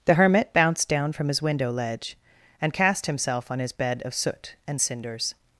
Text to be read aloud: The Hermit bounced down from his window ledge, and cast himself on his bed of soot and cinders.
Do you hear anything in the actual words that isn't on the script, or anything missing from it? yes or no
no